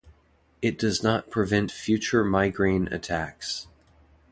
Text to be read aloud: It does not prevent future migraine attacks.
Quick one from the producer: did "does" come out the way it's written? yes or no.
yes